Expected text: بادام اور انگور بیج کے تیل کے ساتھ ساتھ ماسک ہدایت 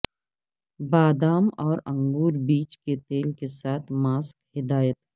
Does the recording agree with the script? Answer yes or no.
no